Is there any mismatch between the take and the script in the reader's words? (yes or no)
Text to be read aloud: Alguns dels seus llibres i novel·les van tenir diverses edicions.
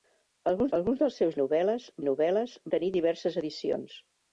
yes